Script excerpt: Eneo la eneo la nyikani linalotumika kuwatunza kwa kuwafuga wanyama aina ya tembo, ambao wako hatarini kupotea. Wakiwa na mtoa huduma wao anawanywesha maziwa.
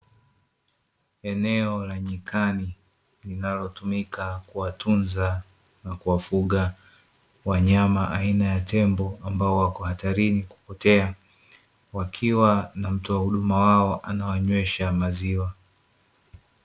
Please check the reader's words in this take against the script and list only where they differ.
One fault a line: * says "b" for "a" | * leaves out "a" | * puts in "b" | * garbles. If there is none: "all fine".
* leaves out "eneo la"
* says "na" for "kwa"